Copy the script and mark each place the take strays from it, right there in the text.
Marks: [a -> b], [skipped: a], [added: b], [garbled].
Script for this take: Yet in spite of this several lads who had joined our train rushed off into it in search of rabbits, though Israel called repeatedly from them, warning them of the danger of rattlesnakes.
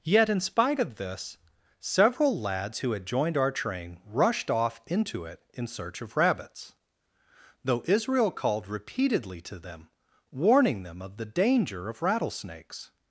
Yet in spite of this several lads who had joined our train rushed off into it in search of rabbits, though Israel called repeatedly [from -> to] them, warning them of the danger of rattlesnakes.